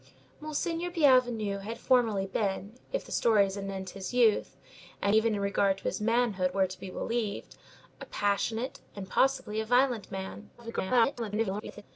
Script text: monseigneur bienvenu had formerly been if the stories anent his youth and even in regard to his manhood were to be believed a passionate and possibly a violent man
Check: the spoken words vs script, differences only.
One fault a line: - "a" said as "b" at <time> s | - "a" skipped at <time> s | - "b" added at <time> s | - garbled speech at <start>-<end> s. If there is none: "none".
- garbled speech at 10.6-11.8 s